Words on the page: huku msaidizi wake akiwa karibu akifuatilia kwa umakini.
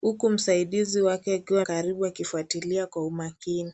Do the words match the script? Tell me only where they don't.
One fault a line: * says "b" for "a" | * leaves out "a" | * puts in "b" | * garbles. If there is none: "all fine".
all fine